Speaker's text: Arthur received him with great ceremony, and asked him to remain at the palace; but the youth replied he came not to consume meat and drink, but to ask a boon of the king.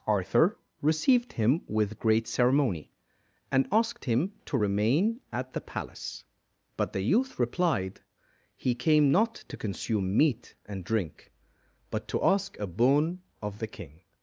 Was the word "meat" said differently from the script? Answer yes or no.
no